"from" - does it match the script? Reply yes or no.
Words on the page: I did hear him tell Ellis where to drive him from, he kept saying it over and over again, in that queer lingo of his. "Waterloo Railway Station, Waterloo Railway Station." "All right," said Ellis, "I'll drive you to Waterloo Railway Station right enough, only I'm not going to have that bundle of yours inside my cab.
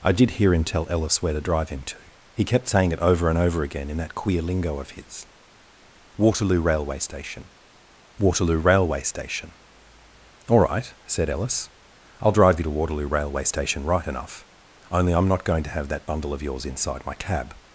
no